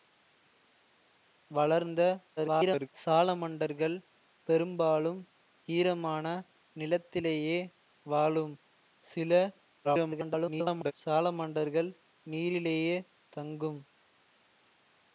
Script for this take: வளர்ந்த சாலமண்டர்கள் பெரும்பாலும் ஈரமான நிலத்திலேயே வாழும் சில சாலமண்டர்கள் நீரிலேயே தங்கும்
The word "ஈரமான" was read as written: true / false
true